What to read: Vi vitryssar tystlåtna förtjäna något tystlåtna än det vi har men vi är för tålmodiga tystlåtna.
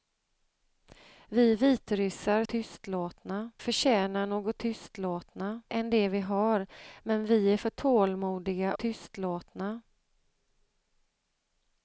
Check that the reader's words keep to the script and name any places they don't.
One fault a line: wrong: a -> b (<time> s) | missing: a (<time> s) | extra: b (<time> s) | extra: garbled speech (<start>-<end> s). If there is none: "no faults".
no faults